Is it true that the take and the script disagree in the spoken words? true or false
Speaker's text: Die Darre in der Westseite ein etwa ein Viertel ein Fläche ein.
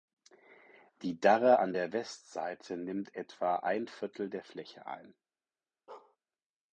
true